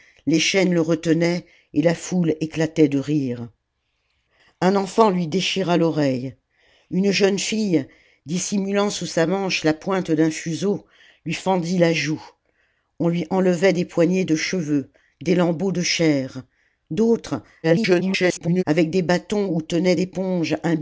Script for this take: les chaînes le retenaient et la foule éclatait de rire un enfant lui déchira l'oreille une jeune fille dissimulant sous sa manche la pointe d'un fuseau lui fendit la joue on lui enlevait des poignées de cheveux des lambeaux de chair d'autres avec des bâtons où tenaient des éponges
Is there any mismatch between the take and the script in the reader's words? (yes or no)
yes